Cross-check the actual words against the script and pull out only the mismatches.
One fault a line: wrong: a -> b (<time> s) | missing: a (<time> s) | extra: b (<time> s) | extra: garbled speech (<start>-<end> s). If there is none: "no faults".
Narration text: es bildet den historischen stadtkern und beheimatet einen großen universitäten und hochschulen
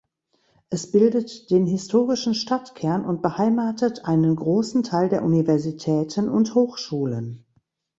extra: teil der (4.8 s)